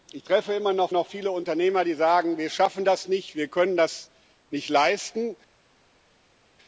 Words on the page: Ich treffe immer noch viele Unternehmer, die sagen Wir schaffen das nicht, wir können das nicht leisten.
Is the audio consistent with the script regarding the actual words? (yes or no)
no